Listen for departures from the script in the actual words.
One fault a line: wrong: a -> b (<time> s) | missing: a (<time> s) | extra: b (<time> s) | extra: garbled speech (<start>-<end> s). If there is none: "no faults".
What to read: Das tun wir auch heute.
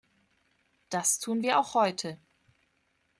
no faults